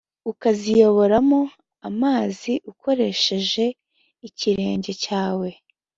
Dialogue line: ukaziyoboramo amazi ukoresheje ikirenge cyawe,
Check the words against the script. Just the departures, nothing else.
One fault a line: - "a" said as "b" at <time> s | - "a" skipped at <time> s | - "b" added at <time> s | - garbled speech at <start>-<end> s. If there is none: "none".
none